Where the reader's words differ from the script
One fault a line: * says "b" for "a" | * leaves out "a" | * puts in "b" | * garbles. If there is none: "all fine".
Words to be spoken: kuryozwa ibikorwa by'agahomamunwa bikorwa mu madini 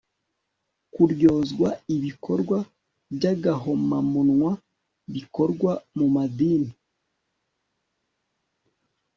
all fine